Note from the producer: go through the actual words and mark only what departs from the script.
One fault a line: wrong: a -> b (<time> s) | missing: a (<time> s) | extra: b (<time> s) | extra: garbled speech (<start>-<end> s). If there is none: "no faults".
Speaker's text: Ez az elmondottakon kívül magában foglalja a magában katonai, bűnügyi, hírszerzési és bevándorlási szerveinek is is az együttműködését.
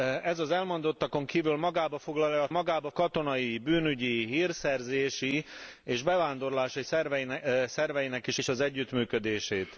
no faults